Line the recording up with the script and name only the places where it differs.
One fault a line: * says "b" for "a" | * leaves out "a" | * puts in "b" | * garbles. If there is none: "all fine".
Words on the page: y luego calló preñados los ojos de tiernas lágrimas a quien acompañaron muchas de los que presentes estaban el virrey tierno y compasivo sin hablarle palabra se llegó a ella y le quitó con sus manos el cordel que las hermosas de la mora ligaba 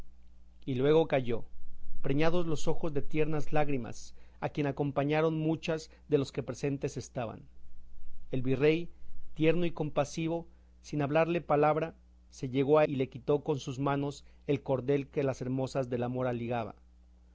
* leaves out "ella"